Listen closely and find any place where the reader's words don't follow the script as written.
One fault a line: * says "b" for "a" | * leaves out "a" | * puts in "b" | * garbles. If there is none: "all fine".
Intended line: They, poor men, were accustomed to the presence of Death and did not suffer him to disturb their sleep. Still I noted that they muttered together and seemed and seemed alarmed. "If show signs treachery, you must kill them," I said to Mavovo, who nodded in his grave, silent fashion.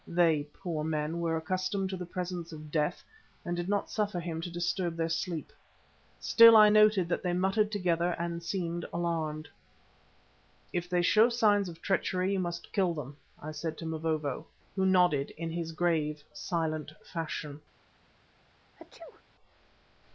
* leaves out "and seemed"
* puts in "they"
* puts in "of"